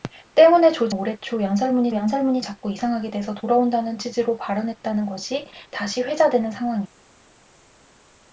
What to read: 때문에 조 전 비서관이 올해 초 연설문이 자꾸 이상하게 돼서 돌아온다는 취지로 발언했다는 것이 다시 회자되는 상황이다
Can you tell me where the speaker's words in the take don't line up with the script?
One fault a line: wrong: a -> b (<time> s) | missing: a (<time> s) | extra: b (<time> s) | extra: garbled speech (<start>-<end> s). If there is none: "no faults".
missing: 전 비서관이 (0.9 s)
extra: 연설문이 (1.9 s)